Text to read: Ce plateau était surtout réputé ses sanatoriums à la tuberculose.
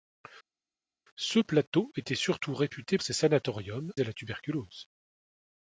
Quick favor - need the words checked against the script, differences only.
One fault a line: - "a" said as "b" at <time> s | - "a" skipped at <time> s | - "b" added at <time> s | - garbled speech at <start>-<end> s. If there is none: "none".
none